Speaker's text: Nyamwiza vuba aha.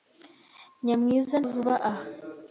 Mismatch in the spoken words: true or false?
false